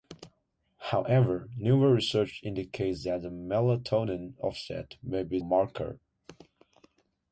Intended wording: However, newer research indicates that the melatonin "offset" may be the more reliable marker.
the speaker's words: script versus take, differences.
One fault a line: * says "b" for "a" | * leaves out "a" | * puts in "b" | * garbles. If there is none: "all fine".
* leaves out "the more reliable"